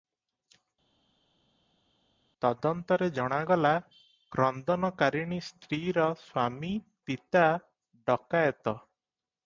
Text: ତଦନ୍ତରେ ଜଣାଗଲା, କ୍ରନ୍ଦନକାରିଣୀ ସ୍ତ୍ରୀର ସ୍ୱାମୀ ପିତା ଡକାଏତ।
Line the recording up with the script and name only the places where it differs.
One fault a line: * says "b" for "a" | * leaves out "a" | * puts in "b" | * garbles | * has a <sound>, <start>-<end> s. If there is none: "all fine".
all fine